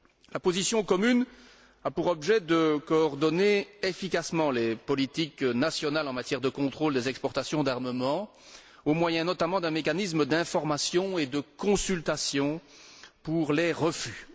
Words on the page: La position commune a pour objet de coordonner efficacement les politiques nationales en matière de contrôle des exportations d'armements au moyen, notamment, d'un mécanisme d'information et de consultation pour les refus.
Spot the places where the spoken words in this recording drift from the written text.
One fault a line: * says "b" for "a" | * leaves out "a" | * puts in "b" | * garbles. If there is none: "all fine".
all fine